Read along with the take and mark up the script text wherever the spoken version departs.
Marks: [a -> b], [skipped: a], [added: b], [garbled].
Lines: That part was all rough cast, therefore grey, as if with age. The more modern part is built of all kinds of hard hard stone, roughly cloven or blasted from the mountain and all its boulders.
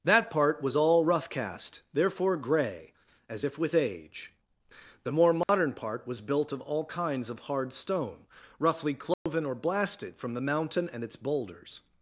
That part was all rough cast, therefore grey, as if with age. The more modern part [is -> was] built of all kinds of hard [skipped: hard] stone, roughly cloven or blasted from the mountain and [skipped: all] its boulders.